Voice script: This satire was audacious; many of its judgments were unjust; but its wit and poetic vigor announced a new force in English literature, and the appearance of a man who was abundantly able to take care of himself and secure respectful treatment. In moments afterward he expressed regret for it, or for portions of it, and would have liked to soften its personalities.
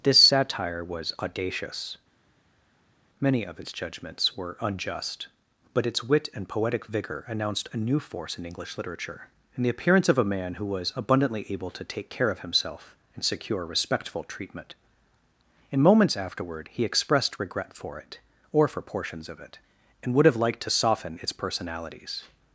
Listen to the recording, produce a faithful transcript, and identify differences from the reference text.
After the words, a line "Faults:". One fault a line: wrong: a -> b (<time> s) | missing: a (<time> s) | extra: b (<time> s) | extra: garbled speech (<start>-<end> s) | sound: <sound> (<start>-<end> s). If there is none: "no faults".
This satire was audacious; many of its judgments were unjust; but its wit and poetic vigor announced a new force in English literature, and the appearance of a man who was abundantly able to take care of himself and secure respectful treatment. In moments afterward he expressed regret for it, or for portions of it, and would have liked to soften its personalities.
Faults:
no faults